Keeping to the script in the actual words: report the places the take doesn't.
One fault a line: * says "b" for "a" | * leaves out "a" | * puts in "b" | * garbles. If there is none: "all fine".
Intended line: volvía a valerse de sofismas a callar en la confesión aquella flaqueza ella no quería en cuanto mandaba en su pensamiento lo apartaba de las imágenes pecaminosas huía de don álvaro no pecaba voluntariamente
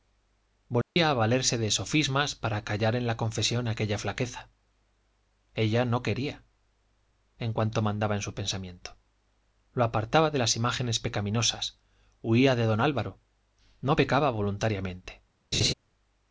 * says "para" for "a"